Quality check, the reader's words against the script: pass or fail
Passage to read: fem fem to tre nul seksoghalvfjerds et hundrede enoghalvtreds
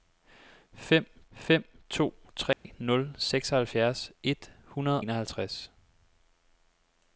pass